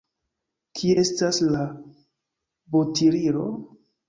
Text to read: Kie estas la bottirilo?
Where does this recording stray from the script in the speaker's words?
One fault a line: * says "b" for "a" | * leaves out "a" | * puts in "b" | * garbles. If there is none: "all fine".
all fine